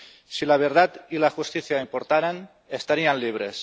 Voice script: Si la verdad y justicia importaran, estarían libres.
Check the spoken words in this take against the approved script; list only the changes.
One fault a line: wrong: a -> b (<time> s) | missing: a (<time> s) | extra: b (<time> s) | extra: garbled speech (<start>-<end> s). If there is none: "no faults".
extra: la (1.2 s)